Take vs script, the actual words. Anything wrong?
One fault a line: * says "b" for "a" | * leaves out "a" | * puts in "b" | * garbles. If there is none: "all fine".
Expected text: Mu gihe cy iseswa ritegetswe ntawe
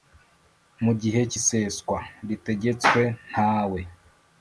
all fine